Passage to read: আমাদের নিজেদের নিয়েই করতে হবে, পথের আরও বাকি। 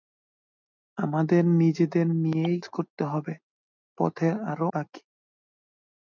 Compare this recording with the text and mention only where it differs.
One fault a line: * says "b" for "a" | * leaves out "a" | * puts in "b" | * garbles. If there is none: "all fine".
all fine